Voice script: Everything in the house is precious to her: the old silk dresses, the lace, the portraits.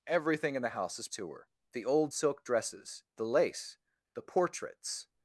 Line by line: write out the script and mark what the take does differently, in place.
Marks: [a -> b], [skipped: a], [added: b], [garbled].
Everything in the house is [skipped: precious] to her: the old silk dresses, the lace, the portraits.